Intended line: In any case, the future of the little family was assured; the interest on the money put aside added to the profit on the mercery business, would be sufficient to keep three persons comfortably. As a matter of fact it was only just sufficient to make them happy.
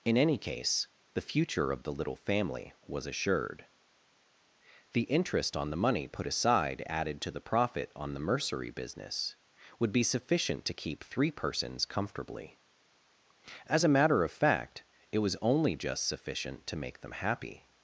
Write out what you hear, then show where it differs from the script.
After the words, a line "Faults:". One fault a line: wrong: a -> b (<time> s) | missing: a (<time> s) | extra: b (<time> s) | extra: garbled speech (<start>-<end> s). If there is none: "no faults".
In any case, the future of the little family was assured; the interest on the money put aside added to the profit on the mercery business, would be sufficient to keep three persons comfortably. As a matter of fact it was only just sufficient to make them happy.
Faults:
no faults